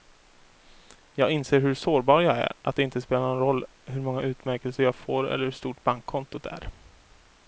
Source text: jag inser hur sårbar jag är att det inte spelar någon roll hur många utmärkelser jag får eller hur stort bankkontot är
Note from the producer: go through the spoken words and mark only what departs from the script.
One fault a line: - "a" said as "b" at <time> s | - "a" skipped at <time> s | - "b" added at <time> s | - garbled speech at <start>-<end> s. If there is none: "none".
none